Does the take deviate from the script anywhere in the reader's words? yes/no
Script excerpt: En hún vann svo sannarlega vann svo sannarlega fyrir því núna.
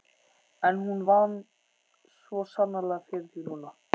yes